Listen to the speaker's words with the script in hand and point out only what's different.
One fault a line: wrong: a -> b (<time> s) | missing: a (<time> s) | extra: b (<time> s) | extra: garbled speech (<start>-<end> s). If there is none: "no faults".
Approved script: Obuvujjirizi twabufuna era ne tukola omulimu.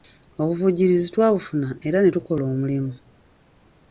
no faults